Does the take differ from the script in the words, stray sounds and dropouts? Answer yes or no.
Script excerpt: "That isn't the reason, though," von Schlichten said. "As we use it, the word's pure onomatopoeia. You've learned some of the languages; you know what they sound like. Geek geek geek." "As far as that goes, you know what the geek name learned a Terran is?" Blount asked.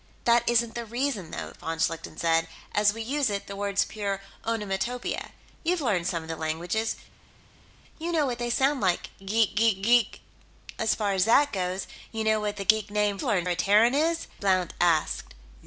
no